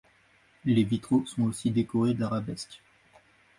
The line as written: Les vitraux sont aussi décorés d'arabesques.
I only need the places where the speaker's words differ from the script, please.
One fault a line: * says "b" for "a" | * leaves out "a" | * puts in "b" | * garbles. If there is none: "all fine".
all fine